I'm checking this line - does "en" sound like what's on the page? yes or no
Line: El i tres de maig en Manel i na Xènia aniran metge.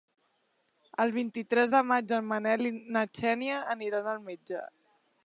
yes